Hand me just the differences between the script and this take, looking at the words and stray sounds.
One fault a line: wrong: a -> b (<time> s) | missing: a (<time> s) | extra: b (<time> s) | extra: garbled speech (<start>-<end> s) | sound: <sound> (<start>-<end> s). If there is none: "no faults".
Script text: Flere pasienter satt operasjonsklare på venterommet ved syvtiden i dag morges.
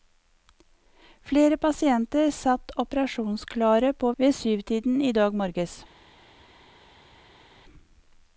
missing: venterommet (4.1 s)